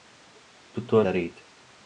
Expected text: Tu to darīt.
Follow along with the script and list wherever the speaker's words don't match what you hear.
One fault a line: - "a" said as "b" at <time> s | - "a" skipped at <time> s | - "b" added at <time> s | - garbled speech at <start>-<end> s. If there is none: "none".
none